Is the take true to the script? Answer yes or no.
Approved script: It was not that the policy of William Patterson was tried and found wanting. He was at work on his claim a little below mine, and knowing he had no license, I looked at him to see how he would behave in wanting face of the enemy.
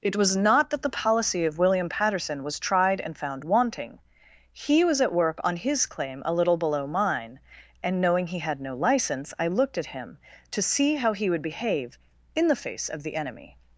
no